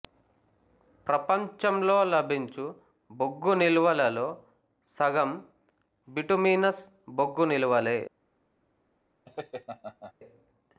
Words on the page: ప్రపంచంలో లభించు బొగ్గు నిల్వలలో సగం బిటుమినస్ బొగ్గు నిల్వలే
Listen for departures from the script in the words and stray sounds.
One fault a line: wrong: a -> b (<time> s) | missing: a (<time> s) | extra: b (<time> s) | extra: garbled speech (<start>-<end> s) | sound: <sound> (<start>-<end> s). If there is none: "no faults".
sound: laugh (9.3-10.1 s)